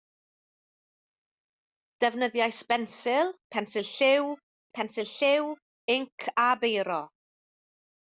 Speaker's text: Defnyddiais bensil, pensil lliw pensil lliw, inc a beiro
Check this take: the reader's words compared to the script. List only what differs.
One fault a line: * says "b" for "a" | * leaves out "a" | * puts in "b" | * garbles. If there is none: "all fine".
all fine